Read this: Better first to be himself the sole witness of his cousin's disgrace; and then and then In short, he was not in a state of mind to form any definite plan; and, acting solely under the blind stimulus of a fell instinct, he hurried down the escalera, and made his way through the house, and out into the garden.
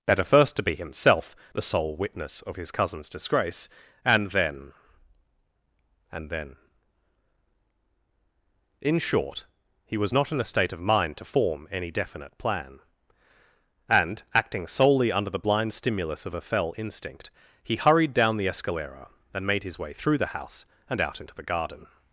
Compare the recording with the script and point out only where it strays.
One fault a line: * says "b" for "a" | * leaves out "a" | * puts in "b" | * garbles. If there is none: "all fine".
all fine